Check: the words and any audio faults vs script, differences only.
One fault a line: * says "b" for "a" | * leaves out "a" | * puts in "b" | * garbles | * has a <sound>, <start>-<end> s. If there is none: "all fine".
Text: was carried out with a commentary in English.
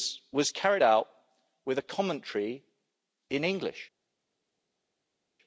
all fine